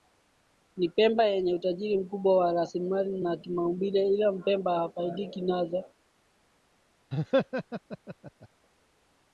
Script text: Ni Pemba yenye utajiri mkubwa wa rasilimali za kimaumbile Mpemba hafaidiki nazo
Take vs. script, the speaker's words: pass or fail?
fail